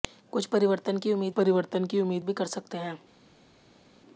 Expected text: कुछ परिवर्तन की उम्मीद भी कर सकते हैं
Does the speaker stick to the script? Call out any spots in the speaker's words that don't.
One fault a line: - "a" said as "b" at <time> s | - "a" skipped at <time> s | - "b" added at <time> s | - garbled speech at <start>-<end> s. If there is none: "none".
- "परिवर्तन की उम्मीद" added at 1.3 s